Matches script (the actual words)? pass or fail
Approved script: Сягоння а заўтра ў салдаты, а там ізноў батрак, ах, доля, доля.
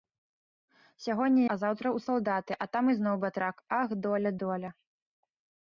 pass